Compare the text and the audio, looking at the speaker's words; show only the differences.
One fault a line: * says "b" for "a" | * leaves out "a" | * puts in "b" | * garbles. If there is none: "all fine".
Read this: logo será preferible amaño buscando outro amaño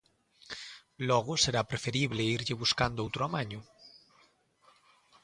* says "irlle" for "amaño"